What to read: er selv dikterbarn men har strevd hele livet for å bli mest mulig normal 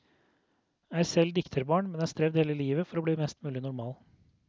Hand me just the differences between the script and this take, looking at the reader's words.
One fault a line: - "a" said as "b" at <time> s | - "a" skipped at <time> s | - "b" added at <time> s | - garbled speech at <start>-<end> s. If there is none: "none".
none